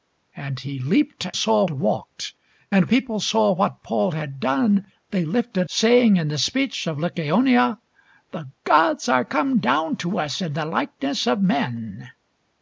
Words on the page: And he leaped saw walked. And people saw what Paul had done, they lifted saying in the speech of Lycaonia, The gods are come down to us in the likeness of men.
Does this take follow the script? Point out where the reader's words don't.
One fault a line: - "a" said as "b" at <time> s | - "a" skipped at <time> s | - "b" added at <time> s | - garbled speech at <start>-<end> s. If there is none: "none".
none